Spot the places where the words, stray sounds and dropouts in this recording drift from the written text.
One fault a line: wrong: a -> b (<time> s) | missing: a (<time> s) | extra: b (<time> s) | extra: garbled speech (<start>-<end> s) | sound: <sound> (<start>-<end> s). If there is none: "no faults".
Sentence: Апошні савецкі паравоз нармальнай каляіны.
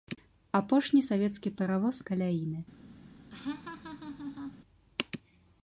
missing: нармальнай (2.0 s)
sound: laugh (3.3-4.6 s)